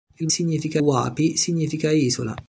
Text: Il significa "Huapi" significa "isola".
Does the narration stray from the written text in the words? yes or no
no